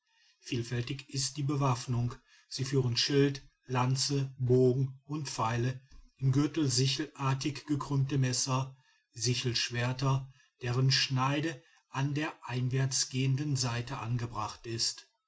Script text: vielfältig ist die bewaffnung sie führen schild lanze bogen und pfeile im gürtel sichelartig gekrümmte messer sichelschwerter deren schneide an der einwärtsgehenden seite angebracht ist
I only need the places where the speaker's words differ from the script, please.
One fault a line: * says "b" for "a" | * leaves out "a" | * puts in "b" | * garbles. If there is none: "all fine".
all fine